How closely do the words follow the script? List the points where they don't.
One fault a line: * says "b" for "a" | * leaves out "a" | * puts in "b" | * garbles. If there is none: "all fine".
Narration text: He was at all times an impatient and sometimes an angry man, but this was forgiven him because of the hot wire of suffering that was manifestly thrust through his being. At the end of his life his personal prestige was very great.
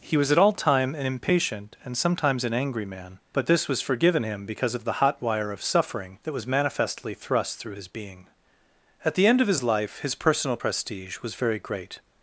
* says "time" for "times"